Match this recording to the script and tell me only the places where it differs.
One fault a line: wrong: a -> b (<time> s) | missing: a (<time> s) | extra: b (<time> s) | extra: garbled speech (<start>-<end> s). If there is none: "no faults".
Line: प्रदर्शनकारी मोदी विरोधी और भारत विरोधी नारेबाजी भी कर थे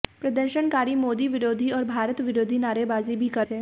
no faults